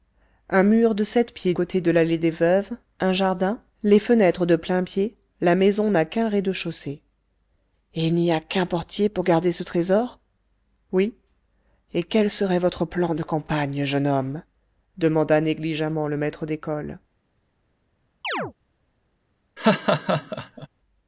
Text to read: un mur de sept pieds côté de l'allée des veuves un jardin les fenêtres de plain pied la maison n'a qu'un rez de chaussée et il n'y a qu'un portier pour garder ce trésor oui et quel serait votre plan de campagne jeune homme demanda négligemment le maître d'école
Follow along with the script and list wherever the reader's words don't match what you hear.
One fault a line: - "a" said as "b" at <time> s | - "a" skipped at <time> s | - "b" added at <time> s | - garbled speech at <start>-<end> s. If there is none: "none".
none